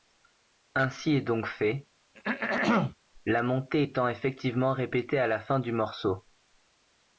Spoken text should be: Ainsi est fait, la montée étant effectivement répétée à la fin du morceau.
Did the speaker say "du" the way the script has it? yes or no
yes